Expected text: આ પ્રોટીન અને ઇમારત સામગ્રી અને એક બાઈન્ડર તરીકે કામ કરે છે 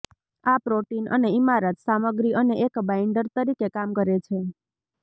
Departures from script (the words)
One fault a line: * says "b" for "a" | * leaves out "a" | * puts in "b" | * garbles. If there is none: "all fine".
all fine